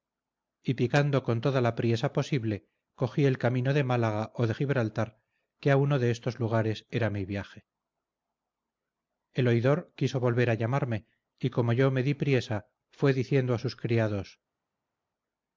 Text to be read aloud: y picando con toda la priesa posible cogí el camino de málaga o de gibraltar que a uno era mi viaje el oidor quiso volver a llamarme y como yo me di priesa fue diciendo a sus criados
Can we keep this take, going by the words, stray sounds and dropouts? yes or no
no